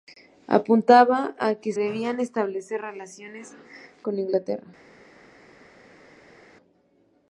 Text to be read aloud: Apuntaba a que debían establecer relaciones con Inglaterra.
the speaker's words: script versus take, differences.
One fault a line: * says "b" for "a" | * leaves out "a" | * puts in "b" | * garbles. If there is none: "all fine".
all fine